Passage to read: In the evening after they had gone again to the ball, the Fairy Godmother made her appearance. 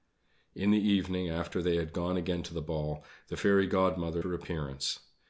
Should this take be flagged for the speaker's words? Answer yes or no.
yes